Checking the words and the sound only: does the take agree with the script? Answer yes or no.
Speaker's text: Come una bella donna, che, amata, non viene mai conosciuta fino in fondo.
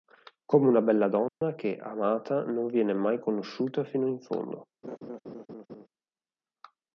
no